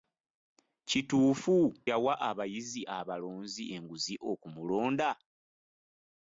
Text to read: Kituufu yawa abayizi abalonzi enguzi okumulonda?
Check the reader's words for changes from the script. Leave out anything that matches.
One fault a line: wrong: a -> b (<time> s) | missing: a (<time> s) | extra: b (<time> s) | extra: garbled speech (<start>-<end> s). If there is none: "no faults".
no faults